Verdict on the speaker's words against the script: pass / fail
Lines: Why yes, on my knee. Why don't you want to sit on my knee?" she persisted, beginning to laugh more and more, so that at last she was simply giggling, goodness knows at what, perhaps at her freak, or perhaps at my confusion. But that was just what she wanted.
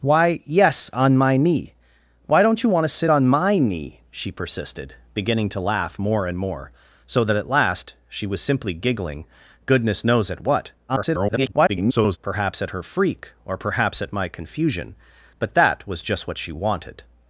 fail